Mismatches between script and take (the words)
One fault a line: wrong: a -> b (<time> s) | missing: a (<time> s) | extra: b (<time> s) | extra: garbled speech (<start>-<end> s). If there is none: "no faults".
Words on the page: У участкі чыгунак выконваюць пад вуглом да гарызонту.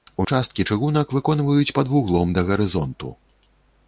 no faults